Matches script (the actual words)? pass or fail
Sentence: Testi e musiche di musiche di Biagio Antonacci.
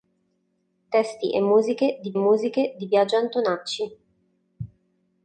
pass